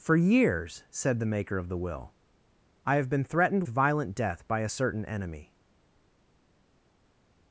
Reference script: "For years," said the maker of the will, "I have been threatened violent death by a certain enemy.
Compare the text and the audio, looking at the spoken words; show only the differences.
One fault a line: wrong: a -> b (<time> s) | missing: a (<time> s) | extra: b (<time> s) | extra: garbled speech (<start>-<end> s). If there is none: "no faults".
no faults